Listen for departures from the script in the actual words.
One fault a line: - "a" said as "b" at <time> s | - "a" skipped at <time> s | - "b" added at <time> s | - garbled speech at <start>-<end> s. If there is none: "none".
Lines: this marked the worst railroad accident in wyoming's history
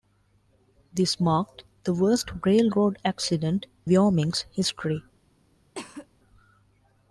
- "in" skipped at 3.7 s